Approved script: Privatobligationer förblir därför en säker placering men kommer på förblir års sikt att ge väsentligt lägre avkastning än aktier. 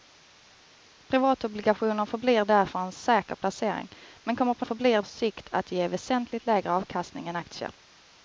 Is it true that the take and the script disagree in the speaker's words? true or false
false